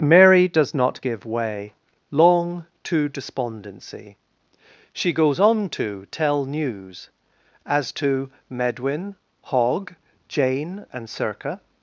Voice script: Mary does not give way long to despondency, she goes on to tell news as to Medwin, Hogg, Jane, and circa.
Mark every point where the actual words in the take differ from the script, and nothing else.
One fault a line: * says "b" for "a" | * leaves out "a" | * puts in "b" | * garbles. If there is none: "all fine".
all fine